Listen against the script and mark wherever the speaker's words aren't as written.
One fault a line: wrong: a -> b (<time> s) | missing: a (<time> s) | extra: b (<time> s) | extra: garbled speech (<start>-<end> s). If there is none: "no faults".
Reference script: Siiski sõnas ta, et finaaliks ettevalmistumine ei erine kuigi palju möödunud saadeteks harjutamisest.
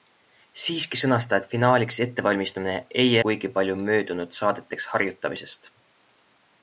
missing: erine (3.1 s)